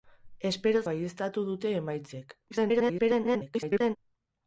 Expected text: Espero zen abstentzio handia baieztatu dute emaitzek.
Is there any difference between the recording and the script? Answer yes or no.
yes